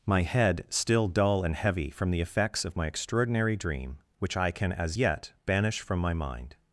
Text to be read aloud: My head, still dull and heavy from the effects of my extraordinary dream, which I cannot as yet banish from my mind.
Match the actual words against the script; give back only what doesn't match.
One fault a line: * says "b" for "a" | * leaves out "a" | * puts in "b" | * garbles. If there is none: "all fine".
* says "can" for "cannot"